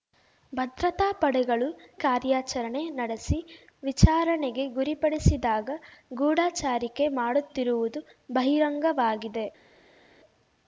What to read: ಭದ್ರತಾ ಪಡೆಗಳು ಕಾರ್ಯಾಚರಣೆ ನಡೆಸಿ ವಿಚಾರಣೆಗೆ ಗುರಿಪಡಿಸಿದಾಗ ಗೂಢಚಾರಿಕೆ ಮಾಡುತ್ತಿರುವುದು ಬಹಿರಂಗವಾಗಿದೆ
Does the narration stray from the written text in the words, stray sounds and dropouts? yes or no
no